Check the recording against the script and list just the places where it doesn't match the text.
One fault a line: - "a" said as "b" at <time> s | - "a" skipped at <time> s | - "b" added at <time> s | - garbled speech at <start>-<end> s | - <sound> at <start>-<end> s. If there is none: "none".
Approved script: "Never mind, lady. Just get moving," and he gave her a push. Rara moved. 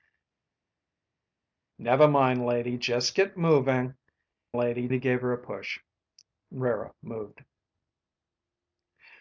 - "and" said as "lady" at 4.6 s